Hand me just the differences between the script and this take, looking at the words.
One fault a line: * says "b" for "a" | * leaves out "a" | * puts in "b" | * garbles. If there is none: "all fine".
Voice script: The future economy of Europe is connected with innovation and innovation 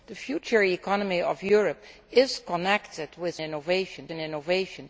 all fine